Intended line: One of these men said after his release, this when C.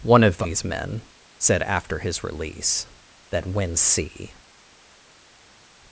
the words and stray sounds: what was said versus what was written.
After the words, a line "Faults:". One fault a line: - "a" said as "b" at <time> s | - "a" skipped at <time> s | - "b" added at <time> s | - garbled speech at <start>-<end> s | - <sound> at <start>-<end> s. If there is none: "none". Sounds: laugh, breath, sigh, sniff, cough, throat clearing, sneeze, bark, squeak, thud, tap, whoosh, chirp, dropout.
One of these men said after his release, that when C.
Faults:
- "this" said as "that" at 3.3 s